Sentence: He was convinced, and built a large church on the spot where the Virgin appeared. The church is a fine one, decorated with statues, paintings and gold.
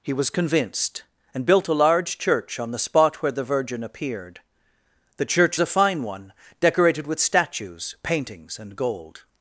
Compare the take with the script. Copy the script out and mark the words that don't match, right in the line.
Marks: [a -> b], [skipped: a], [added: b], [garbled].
He was convinced, and built a large church on the spot where the Virgin appeared. The church [skipped: is] a fine one, decorated with statues, paintings and gold.